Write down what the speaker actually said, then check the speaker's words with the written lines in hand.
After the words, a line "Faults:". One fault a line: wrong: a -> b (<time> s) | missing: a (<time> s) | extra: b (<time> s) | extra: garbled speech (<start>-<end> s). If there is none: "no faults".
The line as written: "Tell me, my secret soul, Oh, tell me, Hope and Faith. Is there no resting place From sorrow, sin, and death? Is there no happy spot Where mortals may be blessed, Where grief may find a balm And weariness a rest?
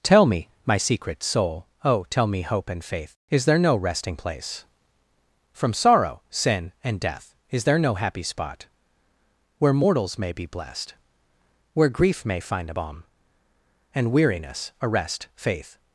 "Tell me, my secret soul, Oh, tell me, Hope and Faith. Is there no resting place From sorrow, sin, and death? Is there no happy spot Where mortals may be blessed, Where grief may find a balm And weariness a rest? Faith
Faults:
extra: Faith (15.3 s)